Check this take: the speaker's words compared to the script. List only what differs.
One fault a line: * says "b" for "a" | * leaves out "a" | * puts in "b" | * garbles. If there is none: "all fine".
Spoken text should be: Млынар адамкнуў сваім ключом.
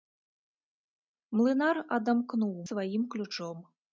all fine